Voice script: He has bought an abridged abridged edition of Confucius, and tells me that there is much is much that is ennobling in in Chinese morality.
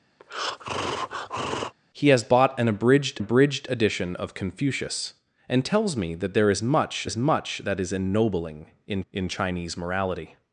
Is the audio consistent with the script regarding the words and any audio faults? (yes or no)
no